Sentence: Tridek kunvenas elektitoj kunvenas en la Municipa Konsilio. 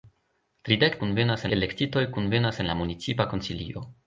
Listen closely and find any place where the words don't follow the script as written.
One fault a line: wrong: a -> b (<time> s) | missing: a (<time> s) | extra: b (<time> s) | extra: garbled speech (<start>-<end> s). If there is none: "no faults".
no faults